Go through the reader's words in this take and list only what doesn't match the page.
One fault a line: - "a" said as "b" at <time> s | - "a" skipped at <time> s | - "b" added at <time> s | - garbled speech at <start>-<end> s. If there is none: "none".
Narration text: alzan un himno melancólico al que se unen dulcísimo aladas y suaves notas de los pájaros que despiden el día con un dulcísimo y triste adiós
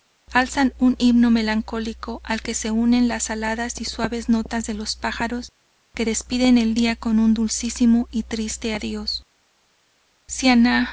- "dulcísimo" said as "las" at 3.1 s